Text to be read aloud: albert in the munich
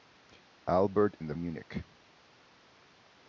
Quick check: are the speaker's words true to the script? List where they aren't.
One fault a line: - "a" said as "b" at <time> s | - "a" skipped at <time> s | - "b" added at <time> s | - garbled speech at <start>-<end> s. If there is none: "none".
none